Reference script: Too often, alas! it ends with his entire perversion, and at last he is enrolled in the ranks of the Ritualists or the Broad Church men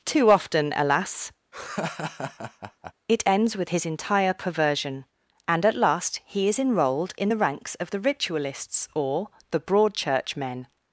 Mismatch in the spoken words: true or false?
false